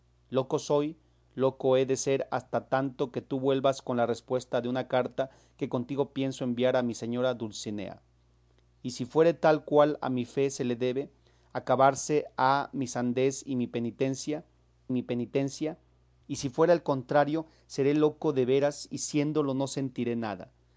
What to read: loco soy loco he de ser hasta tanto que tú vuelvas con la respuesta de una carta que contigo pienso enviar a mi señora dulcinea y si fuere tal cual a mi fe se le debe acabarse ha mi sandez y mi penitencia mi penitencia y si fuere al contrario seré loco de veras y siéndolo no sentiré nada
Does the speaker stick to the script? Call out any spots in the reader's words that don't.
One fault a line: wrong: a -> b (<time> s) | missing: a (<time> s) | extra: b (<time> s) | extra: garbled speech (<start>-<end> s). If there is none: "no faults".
no faults